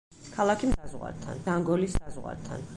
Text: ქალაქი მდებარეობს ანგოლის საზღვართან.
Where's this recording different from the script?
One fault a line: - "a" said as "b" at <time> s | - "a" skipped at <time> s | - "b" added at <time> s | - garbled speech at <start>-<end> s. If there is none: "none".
- "მდებარეობს" said as "საზღვართან" at 0.7 s